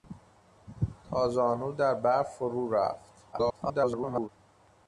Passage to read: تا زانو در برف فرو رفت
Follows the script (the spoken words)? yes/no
no